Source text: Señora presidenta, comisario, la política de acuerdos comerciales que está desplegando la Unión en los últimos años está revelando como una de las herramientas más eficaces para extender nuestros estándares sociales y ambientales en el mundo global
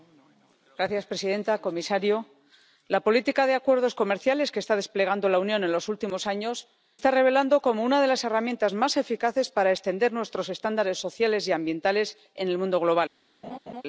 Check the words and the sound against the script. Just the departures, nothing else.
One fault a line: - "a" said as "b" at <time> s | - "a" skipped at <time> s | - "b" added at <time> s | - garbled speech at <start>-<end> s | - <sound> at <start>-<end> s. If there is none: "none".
- laugh at 13.4-13.8 s